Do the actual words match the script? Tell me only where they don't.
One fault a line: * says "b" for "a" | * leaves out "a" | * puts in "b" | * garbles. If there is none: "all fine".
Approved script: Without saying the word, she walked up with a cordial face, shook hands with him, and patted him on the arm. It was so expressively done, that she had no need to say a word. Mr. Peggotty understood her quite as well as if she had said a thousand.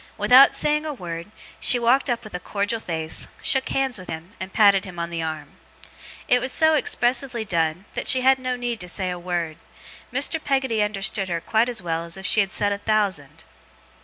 * says "a" for "the"